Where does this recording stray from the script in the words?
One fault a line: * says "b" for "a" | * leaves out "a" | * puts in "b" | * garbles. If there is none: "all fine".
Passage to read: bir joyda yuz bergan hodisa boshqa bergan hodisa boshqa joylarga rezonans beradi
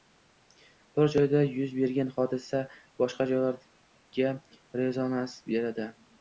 * leaves out "bergan hodisa boshqa"